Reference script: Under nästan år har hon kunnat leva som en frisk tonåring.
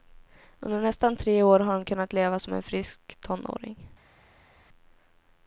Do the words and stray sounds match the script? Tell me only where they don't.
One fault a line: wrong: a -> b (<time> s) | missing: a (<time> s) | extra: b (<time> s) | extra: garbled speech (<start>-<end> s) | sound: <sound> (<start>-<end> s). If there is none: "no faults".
extra: tre (1.1 s)